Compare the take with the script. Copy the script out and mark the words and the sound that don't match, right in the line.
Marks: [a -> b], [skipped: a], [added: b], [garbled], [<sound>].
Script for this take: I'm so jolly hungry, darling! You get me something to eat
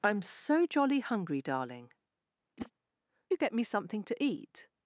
I'm so jolly hungry, darling! [whoosh] You get me something to eat